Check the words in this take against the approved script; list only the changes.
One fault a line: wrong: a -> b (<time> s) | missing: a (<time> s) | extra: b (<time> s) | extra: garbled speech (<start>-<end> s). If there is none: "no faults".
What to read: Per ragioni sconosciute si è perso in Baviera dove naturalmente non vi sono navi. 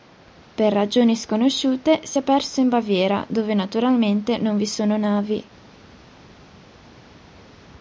no faults